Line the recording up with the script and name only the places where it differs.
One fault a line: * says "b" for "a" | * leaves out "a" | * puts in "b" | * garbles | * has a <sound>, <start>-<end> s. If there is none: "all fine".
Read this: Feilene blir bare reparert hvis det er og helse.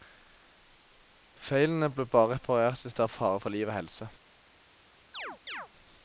* puts in "fare for liv"
* has a chirp, 5.1-5.7 s